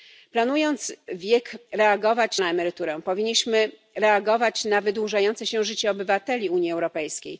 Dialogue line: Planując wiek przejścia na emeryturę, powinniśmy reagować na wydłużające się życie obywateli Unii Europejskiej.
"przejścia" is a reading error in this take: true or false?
true